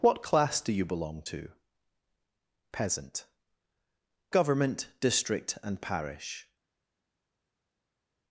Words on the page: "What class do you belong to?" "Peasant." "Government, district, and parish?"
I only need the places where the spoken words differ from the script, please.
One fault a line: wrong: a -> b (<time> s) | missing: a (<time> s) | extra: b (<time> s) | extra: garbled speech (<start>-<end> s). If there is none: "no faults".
no faults